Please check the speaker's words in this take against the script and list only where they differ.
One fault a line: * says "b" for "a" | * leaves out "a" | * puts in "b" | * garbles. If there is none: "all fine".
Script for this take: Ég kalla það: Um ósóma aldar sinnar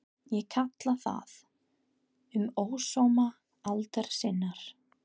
all fine